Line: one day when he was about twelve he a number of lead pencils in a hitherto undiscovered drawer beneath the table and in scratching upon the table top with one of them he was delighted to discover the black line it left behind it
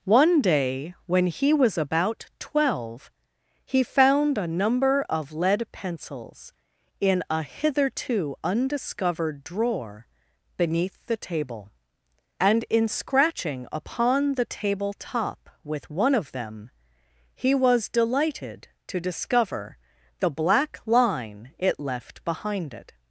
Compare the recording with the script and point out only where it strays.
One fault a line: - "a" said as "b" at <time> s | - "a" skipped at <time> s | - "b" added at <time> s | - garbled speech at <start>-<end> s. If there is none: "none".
- "found" added at 3.8 s